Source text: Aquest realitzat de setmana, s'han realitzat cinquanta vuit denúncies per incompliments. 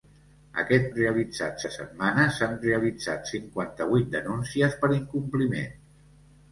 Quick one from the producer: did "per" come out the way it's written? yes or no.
yes